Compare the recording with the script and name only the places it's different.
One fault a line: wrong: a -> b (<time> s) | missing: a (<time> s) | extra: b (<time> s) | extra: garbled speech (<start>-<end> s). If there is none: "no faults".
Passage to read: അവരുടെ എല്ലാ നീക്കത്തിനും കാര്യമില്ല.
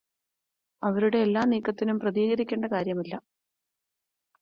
extra: പ്രതികരിക്കേണ്ട (2.0 s)